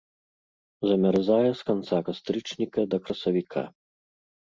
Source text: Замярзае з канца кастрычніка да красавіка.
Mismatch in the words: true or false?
false